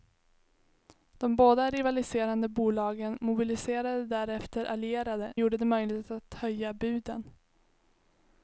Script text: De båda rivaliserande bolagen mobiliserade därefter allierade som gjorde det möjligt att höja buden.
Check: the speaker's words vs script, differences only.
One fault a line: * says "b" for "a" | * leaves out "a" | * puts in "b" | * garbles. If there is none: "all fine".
* leaves out "som"